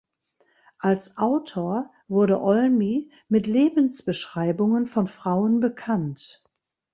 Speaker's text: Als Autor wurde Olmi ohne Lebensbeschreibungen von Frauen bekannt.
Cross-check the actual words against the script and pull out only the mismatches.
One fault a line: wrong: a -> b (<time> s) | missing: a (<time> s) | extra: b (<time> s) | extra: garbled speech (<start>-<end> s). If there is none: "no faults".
wrong: ohne -> mit (3.3 s)